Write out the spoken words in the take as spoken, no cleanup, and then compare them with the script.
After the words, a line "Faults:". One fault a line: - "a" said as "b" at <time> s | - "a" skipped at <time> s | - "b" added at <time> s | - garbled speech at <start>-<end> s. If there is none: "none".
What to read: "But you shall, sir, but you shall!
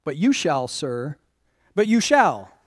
"But you shall, sir, but you shall!
Faults:
none